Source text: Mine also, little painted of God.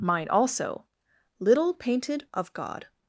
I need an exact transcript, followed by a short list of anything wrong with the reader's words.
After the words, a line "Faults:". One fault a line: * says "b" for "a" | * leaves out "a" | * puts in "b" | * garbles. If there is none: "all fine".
Mine also, little painted of God.
Faults:
all fine